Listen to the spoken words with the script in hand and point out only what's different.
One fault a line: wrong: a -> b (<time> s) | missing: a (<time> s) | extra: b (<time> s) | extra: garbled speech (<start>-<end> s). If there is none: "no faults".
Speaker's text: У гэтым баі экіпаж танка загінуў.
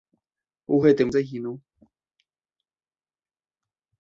missing: баі экіпаж танка (1.1 s)